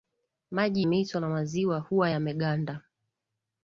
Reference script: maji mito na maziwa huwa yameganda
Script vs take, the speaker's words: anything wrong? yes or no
no